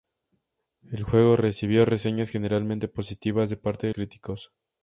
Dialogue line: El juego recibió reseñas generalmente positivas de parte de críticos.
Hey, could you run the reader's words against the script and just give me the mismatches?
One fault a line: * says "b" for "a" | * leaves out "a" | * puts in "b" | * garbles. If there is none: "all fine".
all fine